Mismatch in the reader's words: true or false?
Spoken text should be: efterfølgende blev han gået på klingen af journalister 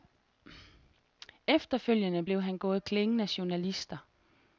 true